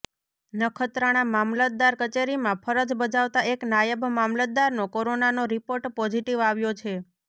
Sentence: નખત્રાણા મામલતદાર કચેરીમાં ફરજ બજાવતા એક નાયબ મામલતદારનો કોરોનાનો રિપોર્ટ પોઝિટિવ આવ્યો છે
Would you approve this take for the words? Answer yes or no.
yes